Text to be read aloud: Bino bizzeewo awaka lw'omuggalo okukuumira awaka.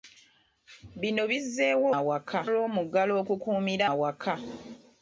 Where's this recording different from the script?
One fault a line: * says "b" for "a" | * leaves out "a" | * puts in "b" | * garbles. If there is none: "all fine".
all fine